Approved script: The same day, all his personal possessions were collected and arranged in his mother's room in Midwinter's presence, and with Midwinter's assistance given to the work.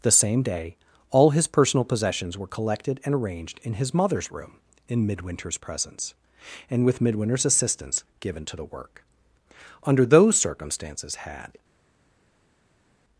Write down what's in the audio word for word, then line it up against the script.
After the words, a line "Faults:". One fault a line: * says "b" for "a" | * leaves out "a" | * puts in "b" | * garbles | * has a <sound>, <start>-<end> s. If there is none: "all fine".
The same day, all his personal possessions were collected and arranged in his mother's room in Midwinter's presence, and with Midwinter's assistance given to the work. Under those circumstances had
Faults:
* puts in "Under those circumstances had"